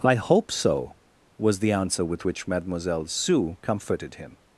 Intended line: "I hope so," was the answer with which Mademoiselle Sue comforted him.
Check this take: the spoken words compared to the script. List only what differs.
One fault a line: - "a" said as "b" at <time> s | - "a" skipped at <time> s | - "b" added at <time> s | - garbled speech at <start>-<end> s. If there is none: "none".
none